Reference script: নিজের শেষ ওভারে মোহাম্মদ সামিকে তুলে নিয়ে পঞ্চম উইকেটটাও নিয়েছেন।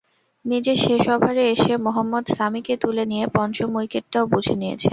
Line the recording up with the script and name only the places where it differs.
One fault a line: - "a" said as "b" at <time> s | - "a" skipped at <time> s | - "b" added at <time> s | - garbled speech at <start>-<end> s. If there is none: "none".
- "এসে" added at 1.5 s
- "বুঝে" added at 4.3 s